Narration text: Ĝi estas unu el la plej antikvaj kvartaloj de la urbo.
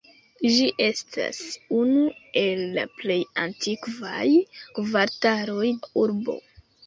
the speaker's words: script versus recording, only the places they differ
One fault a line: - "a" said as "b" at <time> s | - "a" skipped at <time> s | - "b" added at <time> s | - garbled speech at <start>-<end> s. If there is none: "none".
- "de" skipped at 5.7 s